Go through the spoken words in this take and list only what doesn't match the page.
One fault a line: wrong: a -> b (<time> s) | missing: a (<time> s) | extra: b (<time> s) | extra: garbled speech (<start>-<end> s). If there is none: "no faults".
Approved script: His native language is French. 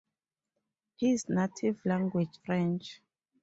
missing: is (2.4 s)